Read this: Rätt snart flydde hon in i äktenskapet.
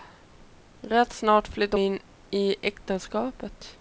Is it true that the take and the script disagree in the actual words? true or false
true